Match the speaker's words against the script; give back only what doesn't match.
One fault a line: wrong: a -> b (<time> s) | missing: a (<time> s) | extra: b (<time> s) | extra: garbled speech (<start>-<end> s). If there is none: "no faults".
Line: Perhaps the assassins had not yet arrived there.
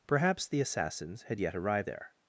missing: not (1.4 s)